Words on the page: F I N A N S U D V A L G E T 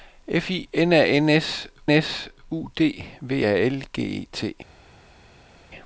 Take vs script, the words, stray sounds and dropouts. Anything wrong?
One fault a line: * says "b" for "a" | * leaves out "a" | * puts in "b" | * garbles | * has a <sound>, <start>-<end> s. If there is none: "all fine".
* puts in "S"